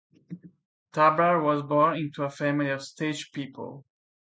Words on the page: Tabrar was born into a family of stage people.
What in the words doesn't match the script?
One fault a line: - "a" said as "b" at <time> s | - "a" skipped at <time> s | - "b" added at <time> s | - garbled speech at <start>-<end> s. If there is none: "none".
none